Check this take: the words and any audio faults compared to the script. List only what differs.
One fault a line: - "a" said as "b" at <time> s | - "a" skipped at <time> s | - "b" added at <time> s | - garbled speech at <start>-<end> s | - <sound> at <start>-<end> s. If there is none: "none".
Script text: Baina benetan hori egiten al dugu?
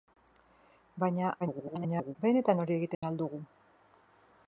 - garbled speech at 1.4-2.2 s
- dropout at 2.9-3.0 s